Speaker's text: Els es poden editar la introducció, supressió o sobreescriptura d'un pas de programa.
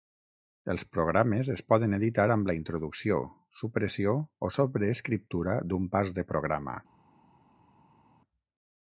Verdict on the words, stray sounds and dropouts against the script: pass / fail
fail